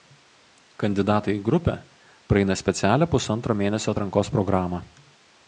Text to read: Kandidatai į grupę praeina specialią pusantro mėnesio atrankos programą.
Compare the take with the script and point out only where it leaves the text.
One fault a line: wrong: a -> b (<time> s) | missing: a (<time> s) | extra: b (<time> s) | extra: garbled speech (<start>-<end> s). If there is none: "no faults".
no faults